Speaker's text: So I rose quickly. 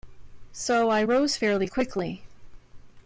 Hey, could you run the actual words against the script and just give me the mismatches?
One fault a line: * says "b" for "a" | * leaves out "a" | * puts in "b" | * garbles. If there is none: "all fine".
* puts in "fairly"